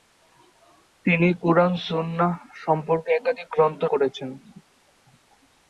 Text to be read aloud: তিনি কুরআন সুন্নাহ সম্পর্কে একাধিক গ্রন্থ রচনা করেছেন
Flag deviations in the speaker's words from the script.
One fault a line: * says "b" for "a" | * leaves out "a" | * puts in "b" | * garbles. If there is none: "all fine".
* leaves out "রচনা"